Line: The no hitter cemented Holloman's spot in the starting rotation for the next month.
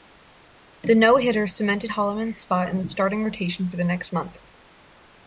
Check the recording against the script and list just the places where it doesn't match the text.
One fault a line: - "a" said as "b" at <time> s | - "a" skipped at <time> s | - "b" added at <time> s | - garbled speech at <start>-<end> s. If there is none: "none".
none